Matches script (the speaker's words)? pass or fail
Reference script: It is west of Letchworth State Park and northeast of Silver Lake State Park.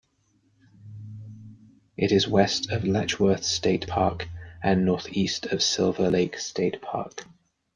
pass